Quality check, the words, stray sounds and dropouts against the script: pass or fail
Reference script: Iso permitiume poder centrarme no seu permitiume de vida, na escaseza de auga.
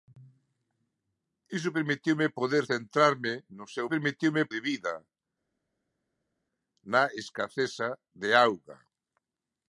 pass